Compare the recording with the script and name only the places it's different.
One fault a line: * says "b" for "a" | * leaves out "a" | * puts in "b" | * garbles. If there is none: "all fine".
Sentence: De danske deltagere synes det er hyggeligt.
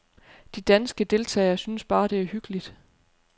* puts in "bare"